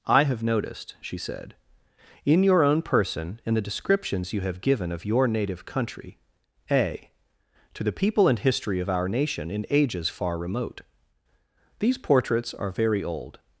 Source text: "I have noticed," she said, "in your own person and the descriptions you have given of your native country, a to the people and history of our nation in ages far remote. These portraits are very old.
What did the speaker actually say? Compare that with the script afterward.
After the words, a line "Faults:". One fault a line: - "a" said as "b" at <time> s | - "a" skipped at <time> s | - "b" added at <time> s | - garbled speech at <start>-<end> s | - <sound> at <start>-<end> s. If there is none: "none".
"I have noticed," she said, "in your own person and the descriptions you have given of your native country, a to the people and history of our nation in ages far remote. These portraits are very old.
Faults:
none